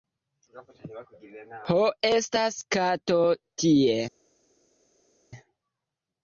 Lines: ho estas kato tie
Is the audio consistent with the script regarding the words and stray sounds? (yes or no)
yes